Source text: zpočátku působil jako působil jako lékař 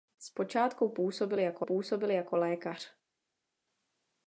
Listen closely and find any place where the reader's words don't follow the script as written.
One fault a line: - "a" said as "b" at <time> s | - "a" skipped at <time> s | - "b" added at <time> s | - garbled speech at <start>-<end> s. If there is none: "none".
none